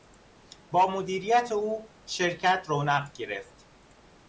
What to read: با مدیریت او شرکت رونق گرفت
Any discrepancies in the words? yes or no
no